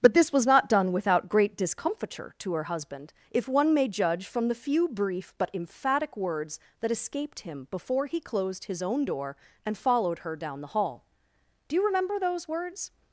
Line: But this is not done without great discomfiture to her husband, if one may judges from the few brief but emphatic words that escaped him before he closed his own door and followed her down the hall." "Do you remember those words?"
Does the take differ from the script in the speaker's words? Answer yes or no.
yes